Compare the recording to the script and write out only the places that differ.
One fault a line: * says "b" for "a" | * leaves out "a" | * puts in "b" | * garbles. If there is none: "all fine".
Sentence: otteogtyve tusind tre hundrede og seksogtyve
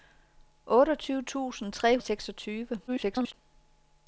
* leaves out "hundrede"
* garbles